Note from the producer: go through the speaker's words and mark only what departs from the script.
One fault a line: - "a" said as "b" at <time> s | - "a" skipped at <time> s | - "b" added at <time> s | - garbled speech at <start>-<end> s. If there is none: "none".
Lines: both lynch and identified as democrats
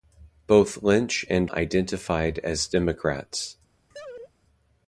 none